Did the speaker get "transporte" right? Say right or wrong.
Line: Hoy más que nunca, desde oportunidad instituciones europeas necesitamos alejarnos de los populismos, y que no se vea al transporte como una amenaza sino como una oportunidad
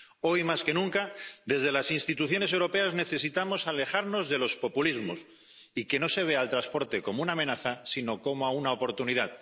right